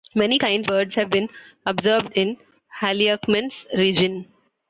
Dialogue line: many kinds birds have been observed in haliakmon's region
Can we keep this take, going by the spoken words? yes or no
yes